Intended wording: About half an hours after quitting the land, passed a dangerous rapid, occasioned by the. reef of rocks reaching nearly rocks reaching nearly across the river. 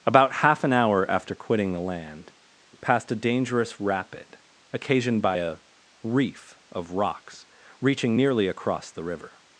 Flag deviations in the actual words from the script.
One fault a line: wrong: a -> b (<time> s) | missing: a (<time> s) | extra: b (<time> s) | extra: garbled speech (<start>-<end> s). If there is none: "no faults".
wrong: hours -> hour (0.7 s)
wrong: the -> a (5.3 s)
missing: rocks reaching nearly (8.5 s)